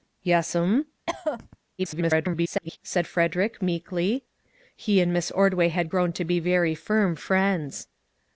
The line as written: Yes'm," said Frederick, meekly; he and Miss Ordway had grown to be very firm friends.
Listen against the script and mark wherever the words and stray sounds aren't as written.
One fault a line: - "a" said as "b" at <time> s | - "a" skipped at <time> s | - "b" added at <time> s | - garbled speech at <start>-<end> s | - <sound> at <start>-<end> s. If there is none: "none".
- cough at 1.1-1.6 s
- garbled speech at 1.8-2.8 s